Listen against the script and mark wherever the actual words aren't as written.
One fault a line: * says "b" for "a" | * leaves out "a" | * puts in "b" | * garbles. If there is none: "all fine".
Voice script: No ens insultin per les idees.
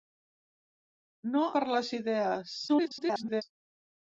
* leaves out "ens insultin"
* garbles